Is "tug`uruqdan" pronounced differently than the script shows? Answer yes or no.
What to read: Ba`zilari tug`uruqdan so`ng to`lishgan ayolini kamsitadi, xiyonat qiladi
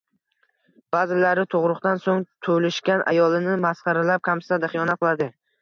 no